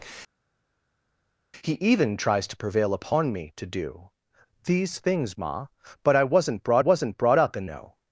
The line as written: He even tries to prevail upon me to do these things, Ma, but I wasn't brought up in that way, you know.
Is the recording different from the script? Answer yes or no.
yes